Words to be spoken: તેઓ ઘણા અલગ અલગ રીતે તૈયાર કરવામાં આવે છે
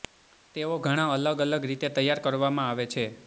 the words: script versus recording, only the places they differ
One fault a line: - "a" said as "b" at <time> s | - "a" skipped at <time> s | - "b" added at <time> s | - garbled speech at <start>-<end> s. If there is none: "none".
none